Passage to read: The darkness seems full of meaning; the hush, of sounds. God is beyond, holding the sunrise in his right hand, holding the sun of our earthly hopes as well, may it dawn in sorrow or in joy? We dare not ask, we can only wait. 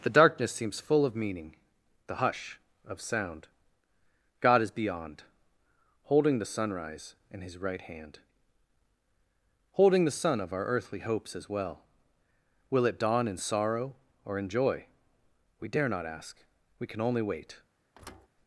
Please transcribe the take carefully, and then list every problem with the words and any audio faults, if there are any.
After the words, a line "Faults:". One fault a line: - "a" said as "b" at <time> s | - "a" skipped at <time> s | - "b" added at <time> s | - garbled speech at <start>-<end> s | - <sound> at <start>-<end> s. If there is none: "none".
The darkness seems full of meaning; the hush, of sound. God is beyond, holding the sunrise in his right hand, holding the sun of our earthly hopes as well, will it dawn in sorrow or in joy? We dare not ask, we can only wait.
Faults:
- "sounds" said as "sound" at 3.0 s
- "may" said as "will" at 12.7 s
- thud at 17.9-18.3 s